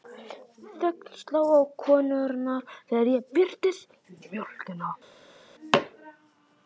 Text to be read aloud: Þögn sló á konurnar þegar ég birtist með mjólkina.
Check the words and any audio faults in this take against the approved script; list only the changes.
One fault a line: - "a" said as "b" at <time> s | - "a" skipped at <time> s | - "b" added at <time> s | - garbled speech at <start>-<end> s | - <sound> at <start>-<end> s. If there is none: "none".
none